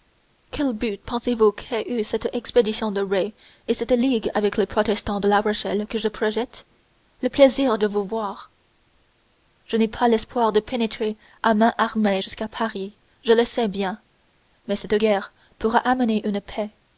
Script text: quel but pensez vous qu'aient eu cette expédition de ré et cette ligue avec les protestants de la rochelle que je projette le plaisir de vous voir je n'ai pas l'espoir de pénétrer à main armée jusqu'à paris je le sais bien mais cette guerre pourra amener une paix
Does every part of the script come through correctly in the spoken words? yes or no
yes